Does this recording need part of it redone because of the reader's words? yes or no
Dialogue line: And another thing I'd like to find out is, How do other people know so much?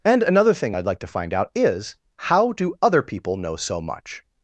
no